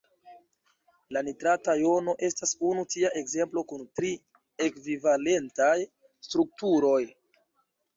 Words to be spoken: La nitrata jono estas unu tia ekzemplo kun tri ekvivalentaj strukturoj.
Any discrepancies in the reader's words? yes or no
no